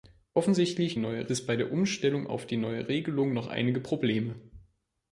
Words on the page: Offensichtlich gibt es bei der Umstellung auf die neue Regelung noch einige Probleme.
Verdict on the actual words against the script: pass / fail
fail